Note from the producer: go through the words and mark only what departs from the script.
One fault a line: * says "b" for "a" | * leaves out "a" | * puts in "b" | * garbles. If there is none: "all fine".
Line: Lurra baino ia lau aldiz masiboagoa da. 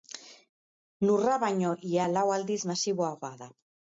all fine